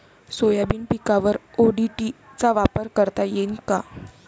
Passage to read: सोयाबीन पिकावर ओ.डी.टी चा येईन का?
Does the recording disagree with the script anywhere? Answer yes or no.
yes